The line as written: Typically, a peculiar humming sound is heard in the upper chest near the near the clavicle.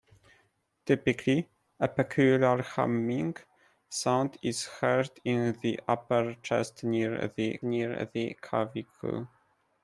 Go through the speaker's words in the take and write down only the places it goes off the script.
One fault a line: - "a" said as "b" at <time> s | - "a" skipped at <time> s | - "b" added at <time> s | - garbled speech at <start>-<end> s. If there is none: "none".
none